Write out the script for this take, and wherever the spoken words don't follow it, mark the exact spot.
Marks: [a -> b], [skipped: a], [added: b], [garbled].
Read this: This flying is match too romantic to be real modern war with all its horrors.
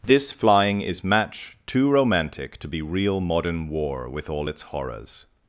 This flying is match too romantic to be real modern war with all its horrors.